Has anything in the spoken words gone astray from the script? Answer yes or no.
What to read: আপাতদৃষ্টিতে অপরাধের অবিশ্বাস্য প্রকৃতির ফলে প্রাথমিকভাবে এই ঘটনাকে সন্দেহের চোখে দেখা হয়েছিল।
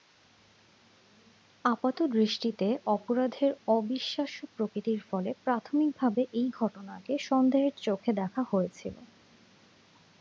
no